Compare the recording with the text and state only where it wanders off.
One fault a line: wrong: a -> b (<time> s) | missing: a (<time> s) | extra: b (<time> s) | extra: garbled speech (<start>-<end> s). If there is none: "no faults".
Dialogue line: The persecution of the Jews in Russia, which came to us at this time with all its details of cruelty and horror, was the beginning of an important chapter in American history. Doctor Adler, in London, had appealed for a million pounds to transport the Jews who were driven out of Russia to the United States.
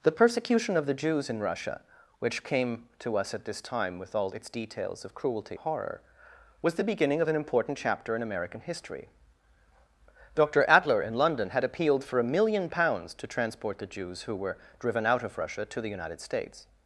missing: and (5.6 s)